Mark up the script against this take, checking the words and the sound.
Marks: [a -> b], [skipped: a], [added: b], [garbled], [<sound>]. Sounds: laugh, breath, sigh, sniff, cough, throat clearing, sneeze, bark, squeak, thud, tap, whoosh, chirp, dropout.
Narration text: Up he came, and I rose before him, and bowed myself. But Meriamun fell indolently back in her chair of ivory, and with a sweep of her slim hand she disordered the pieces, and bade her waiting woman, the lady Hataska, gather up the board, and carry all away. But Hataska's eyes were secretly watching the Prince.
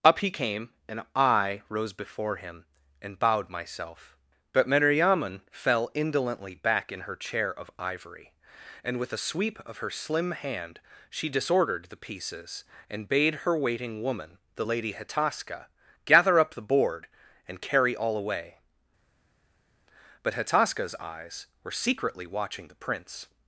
Up he came, and I rose before him, and bowed myself. But Meriamun fell indolently back in her chair of ivory, and with a sweep of her slim hand she disordered the pieces, and bade her waiting woman, the lady Hataska, gather up the board, and carry all away. But Hataska's eyes were secretly watching the Prince.